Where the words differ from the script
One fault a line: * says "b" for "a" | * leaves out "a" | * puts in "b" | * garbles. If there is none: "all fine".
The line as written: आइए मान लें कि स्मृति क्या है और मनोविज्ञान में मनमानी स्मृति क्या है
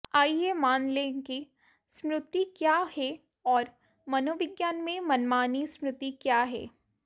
all fine